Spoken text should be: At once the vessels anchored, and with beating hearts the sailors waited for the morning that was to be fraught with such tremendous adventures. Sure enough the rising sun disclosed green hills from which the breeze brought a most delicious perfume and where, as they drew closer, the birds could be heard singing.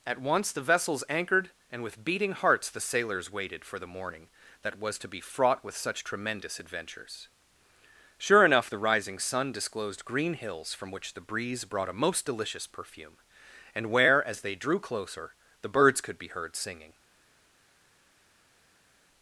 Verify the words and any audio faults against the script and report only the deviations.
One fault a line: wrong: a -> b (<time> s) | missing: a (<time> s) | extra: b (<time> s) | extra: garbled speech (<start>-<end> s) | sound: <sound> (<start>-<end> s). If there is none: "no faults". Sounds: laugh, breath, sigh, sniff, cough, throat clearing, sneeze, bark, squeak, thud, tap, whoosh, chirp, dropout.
no faults